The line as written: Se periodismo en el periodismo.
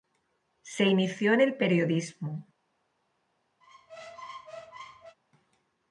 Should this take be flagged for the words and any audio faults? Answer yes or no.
yes